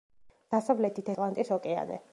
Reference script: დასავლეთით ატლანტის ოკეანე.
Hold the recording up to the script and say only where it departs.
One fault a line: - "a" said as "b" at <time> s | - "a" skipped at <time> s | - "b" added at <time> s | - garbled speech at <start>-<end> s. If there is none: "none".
none